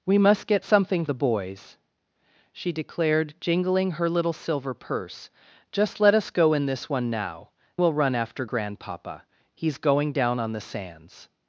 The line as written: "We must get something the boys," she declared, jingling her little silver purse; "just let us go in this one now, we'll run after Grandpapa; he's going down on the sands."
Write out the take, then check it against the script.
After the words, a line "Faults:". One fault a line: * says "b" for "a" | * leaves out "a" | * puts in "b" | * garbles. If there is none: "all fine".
"We must get something the boys," she declared, jingling her little silver purse; "just let us go in this one now, we'll run after Grandpapa; he's going down on the sands."
Faults:
all fine